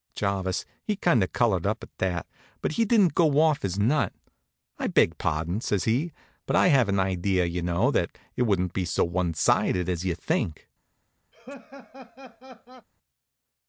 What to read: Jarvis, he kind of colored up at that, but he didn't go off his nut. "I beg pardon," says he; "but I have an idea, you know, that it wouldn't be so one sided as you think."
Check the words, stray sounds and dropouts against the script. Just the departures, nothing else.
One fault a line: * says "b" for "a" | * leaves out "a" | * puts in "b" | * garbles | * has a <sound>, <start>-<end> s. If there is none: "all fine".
* has a laugh, 11.3-12.9 s